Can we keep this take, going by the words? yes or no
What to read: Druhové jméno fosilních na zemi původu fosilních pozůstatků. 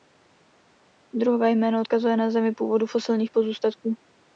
no